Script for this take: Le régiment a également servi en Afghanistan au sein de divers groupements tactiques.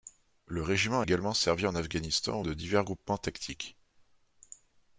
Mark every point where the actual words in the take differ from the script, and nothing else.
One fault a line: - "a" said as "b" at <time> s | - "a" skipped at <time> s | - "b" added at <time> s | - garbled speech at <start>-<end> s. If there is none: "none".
- "a" skipped at 1.0 s
- "sein" skipped at 2.4 s